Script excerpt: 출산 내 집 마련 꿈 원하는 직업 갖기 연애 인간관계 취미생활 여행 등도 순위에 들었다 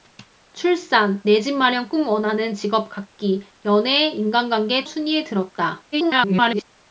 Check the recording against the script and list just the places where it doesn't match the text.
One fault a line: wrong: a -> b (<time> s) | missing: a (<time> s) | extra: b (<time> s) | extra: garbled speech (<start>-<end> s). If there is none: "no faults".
missing: 취미생활 여행 등도 (4.8 s)
extra: garbled speech (5.9-6.6 s)